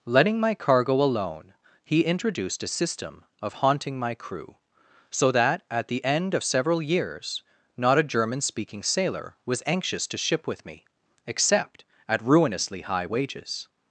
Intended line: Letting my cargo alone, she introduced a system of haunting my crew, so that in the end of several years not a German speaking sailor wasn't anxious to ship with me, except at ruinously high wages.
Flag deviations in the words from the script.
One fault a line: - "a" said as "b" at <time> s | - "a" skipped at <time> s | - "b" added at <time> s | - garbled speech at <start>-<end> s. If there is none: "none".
- "she" said as "he" at 1.8 s
- "in" said as "at" at 5.7 s
- "wasn't" said as "was" at 9.5 s